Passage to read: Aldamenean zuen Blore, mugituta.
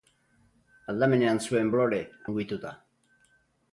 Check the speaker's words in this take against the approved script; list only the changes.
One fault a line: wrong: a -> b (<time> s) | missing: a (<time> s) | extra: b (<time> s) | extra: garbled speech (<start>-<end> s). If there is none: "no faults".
no faults